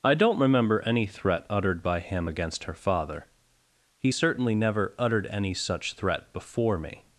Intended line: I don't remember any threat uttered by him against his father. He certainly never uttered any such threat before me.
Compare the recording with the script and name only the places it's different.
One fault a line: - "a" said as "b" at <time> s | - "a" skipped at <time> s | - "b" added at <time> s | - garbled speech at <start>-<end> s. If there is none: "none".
- "his" said as "her" at 2.6 s